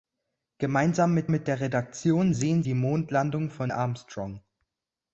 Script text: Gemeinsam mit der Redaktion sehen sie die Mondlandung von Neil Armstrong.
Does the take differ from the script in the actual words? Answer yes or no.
yes